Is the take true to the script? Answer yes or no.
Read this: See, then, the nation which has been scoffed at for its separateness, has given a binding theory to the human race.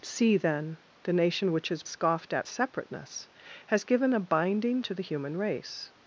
no